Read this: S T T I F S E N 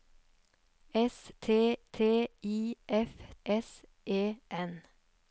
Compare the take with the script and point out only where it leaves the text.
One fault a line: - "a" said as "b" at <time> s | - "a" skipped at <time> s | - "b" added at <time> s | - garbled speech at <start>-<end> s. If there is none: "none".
none